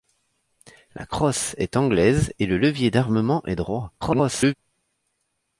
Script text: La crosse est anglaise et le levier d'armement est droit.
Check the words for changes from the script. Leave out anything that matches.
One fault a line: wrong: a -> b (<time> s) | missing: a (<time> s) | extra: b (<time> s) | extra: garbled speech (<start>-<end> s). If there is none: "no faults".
extra: garbled speech (4.0-4.5 s)